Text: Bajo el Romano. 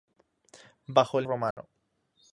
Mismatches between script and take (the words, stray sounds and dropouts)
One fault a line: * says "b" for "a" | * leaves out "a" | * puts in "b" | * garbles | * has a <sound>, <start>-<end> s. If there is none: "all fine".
* has a dropout, 1.5-1.6 s